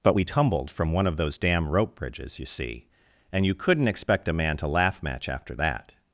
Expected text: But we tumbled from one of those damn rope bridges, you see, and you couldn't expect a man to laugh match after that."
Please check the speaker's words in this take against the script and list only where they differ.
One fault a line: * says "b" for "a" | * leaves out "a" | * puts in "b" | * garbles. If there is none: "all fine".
all fine